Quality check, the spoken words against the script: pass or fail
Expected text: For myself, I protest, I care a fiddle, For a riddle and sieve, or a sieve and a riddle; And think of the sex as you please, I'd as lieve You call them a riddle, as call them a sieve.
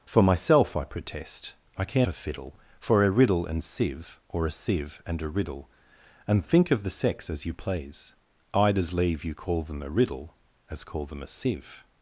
pass